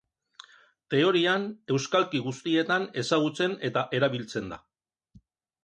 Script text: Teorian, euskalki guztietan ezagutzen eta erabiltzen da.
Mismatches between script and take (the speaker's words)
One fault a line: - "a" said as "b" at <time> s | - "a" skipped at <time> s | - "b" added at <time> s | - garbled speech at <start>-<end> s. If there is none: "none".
none